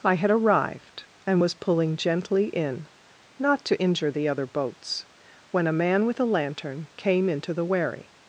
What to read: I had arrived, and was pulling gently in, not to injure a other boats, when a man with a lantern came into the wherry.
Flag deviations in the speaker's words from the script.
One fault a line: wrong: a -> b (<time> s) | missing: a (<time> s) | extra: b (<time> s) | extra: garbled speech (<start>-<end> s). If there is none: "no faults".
wrong: a -> the (4.1 s)